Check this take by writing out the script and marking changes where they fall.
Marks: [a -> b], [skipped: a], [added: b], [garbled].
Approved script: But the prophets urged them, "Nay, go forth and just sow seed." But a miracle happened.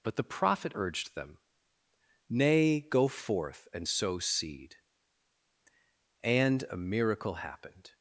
But the [prophets -> prophet] urged them, "Nay, go forth and [skipped: just] sow seed." [But -> And] a miracle happened.